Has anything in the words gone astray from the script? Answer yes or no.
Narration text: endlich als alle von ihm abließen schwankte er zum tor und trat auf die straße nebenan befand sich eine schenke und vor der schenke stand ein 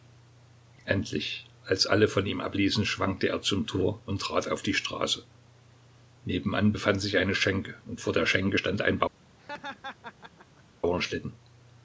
no